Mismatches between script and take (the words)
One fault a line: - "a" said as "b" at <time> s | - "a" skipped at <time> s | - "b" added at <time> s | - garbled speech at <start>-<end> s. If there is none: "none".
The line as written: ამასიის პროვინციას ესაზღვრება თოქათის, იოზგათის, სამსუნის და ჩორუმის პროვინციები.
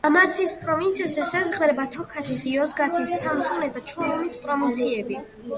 none